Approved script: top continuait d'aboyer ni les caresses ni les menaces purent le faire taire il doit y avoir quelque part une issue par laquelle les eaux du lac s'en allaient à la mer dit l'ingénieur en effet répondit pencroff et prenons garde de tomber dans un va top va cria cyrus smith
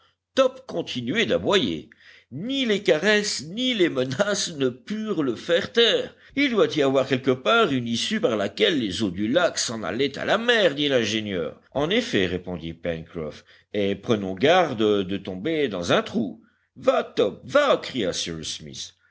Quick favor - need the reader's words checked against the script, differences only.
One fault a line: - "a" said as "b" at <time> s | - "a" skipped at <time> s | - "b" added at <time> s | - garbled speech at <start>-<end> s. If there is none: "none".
- "ne" added at 4.5 s
- "trou" added at 16.0 s